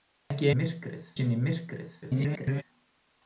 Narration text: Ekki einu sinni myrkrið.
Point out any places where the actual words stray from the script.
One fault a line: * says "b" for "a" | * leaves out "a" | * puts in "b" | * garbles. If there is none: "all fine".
* says "myrkrið" for "einu"
* garbles